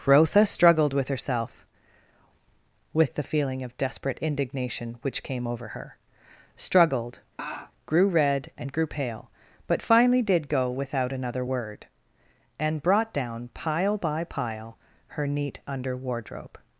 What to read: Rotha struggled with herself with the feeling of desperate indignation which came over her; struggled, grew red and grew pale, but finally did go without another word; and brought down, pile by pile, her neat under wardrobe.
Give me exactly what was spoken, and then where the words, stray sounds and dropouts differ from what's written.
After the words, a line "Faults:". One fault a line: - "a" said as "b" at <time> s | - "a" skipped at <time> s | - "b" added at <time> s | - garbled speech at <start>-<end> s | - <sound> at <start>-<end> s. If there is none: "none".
Rotha struggled with herself with the feeling of desperate indignation which came over her; struggled, grew red and grew pale, but finally did go without another word; and brought down, pile by pile, her neat under wardrobe.
Faults:
- laugh at 7.4-7.7 s